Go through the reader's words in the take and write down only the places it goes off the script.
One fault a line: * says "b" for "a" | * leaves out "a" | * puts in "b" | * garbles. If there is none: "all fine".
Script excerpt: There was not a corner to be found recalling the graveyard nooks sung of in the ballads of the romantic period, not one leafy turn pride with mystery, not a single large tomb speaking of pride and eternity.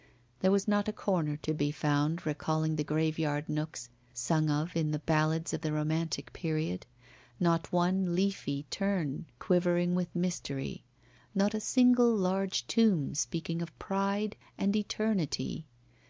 * says "quivering" for "pride"